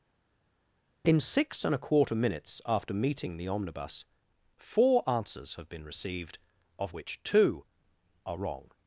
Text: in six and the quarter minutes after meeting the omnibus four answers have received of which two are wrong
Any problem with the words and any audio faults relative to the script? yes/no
yes